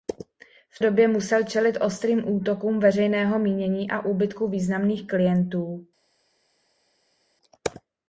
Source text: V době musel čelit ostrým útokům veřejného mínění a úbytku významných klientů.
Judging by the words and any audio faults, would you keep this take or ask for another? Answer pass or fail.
pass